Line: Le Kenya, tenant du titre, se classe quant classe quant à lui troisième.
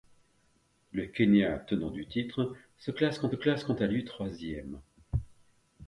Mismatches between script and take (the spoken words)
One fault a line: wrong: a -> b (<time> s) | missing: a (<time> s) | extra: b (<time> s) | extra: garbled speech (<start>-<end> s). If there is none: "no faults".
no faults